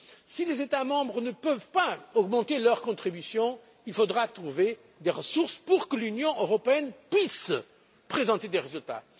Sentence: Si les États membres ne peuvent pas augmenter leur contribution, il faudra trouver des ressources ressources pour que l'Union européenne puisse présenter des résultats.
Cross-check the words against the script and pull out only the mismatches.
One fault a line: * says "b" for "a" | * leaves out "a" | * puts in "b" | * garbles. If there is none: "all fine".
* leaves out "ressources"